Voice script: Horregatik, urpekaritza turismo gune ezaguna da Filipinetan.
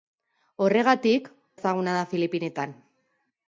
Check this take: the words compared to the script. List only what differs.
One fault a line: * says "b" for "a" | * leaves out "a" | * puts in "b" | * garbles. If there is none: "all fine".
* leaves out "urpekaritza turismo gune"